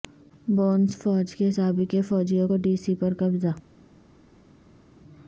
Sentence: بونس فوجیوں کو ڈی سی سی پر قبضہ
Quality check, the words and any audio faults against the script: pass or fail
fail